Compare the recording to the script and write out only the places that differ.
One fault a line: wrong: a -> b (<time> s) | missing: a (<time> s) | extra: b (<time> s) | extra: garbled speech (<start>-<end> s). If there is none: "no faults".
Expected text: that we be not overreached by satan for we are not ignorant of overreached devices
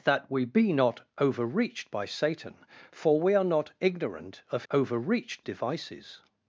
no faults